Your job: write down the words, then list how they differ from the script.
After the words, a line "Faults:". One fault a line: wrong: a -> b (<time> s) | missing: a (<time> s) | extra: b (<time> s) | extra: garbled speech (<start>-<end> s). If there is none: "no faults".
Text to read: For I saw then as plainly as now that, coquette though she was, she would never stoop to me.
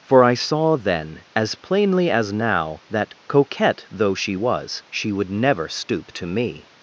For I saw then as plainly as now that, coquette though she was, she would never stoop to me.
Faults:
no faults